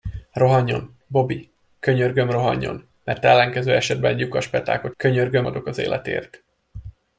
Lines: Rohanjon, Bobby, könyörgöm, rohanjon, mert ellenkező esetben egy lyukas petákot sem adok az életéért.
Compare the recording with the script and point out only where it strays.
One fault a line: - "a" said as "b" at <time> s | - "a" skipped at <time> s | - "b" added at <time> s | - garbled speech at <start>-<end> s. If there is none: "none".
- "sem" said as "könyörgöm" at 5.0 s